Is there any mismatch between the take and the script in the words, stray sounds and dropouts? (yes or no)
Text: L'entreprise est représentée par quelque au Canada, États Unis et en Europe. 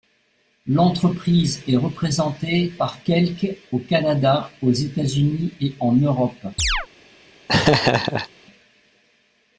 yes